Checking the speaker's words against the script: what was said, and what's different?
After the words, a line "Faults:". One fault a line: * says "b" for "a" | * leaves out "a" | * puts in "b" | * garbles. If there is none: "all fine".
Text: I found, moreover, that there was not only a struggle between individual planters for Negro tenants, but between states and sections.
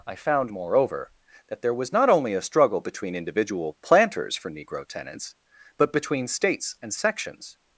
I found, moreover, that there was not only a struggle between individual planters for Negro tenants, but between states and sections.
Faults:
all fine